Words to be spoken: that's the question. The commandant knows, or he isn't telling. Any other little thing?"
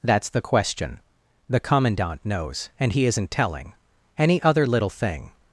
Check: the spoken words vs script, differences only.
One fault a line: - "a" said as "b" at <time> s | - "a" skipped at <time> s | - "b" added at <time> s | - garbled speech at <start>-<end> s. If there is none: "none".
- "or" said as "and" at 2.8 s